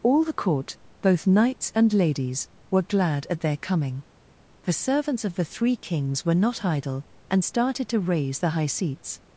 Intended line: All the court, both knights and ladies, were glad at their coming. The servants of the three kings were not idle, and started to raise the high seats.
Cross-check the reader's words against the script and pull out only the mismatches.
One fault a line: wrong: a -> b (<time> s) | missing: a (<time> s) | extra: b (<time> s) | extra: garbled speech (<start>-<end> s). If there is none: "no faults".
no faults